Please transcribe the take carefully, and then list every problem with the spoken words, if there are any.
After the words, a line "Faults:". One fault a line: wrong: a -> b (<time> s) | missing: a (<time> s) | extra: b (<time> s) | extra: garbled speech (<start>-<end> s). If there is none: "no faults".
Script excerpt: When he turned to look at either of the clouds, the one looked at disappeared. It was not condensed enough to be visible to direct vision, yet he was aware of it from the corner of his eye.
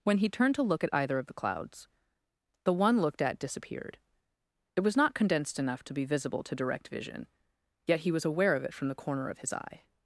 When he turned to look at either of the clouds, the one looked at disappeared. It was not condensed enough to be visible to direct vision, yet he was aware of it from the corner of his eye.
Faults:
no faults